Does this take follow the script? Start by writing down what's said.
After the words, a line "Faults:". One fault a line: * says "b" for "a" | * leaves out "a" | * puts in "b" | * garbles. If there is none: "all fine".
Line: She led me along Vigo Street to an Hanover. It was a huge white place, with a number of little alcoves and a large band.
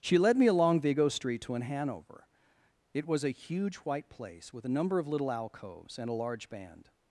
She led me along Vigo Street to an Hanover. It was a huge white place, with a number of little alcoves and a large band.
Faults:
all fine